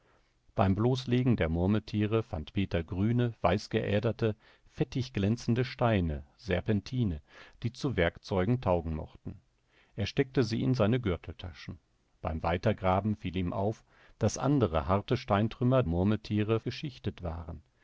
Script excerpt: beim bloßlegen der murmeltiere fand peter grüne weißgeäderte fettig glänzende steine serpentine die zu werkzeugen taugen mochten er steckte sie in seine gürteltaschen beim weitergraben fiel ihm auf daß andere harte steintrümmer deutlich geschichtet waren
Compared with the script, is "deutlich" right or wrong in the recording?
wrong